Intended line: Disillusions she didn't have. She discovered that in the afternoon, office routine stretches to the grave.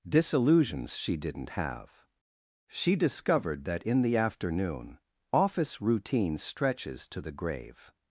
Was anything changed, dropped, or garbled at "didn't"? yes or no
no